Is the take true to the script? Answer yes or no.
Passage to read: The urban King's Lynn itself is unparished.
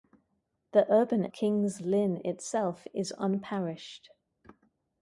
yes